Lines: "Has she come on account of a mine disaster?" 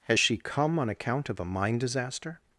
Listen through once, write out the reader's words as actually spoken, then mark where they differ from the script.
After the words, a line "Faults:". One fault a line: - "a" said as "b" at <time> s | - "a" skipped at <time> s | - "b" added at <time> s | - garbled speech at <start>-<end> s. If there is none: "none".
"Has she come on account of a mine disaster?"
Faults:
none